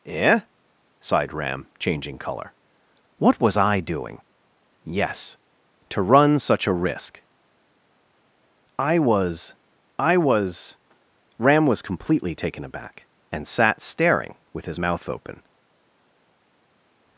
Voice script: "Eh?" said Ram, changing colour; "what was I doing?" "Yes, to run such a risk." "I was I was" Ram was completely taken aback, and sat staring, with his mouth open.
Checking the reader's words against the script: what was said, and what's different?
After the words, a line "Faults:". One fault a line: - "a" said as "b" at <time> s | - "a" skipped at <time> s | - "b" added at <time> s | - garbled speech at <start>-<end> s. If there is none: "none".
"Eh?" sighed Ram, changing colour; "what was I doing?" "Yes, to run such a risk." "I was I was" Ram was completely taken aback, and sat staring, with his mouth open.
Faults:
- "said" said as "sighed" at 1.0 s